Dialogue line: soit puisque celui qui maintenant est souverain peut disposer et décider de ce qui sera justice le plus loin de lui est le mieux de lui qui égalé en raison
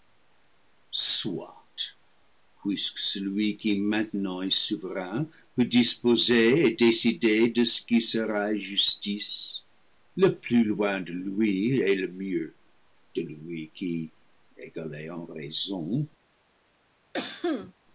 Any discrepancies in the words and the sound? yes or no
yes